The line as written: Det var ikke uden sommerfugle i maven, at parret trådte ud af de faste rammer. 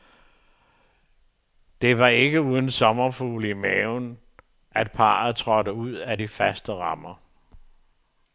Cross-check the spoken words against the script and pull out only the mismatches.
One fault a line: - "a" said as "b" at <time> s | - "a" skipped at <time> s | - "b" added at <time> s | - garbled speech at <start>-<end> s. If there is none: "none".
none